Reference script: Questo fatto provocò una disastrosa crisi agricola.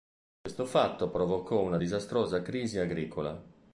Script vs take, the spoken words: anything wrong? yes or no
no